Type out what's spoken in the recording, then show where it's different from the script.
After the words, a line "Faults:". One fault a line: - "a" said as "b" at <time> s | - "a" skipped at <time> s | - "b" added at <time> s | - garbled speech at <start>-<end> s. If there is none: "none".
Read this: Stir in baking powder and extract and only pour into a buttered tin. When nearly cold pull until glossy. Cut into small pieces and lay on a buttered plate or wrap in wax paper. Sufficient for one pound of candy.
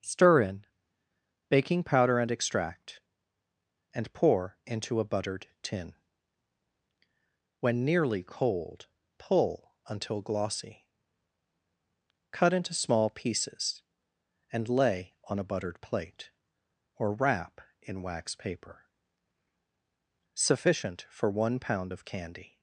Stir in baking powder and extract and pour into a buttered tin. When nearly cold pull until glossy. Cut into small pieces and lay on a buttered plate or wrap in wax paper. Sufficient for one pound of candy.
Faults:
- "only" skipped at 4.1 s